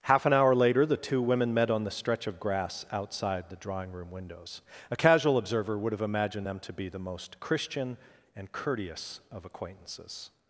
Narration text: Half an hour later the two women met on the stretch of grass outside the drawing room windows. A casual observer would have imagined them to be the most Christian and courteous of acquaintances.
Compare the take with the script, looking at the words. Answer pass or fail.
pass